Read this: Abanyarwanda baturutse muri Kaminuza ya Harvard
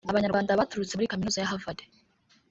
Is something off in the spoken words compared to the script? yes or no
no